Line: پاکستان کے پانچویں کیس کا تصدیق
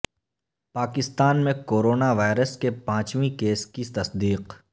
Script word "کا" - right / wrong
wrong